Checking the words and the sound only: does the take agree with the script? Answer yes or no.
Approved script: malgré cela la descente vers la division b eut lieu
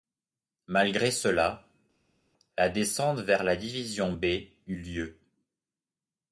yes